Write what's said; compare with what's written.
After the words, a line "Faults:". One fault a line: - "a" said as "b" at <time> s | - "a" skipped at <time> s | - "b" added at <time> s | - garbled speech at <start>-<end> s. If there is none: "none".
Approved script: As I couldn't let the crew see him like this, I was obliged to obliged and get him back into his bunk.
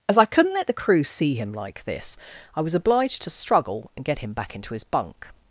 As I couldn't let the crew see him like this, I was obliged to struggle and get him back into his bunk.
Faults:
- "obliged" said as "struggle" at 3.3 s